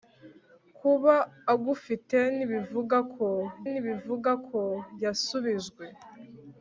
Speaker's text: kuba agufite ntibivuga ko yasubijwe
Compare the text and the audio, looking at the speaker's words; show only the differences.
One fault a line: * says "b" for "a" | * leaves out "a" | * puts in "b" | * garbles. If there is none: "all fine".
* puts in "ntibivuga ko"